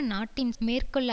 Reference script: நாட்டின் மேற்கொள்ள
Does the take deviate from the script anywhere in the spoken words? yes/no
no